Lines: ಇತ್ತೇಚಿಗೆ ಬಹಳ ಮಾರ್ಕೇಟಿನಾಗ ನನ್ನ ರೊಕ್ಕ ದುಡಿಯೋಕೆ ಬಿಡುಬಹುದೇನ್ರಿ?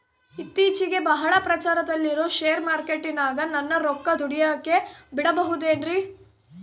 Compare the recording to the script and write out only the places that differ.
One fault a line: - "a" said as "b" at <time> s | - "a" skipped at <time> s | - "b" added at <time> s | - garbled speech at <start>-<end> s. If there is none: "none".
- "ಪ್ರಚಾರದಲ್ಲಿರೋ ಶೇರ್" added at 1.4 s